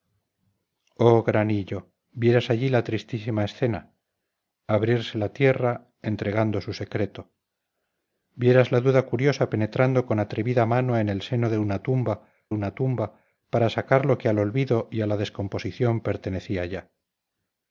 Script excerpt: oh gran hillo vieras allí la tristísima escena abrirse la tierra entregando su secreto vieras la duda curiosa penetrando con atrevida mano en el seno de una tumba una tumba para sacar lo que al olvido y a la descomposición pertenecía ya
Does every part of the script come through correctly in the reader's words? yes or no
yes